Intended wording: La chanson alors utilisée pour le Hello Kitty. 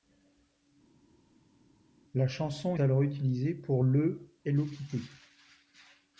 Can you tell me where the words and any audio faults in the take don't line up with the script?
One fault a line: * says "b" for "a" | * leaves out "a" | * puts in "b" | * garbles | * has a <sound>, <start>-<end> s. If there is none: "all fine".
all fine